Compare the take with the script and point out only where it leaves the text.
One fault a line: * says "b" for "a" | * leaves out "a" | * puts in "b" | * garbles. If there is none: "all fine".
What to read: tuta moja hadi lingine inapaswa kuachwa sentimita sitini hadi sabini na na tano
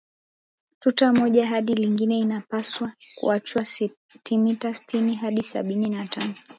* leaves out "na"